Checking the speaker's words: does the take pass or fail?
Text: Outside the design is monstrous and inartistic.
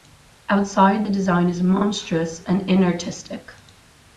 pass